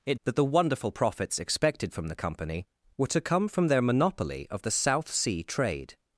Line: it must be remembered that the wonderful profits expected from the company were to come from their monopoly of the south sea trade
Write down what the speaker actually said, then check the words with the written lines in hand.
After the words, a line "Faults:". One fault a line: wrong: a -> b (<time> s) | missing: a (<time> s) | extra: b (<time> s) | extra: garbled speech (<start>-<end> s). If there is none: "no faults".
it that the wonderful profits expected from the company were to come from their monopoly of the south sea trade
Faults:
missing: must be remembered (0.2 s)